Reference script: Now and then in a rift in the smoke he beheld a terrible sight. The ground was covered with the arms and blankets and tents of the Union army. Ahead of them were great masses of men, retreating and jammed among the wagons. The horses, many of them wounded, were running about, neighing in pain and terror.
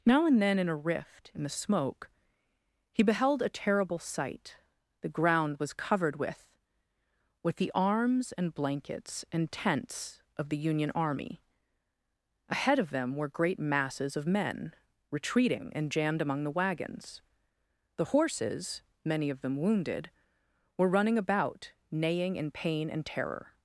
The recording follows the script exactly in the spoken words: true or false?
false